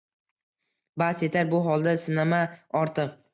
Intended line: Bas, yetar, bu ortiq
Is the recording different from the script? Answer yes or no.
yes